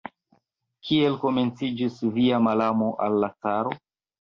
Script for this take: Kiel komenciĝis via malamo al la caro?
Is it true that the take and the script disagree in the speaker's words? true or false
false